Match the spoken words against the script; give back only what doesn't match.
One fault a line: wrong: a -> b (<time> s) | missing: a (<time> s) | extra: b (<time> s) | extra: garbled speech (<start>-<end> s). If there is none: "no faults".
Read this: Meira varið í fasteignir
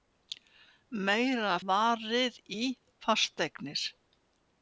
no faults